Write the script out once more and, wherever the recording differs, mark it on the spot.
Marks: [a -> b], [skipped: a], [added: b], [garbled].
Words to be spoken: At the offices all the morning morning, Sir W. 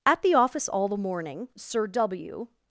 At the [offices -> office] all the morning [skipped: morning,] Sir W.